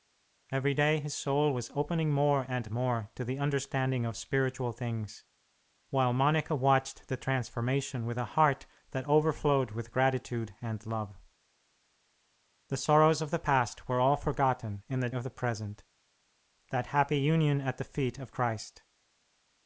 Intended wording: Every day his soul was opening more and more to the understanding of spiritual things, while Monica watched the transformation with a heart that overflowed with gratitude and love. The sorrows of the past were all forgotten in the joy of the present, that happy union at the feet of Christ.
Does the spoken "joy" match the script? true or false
false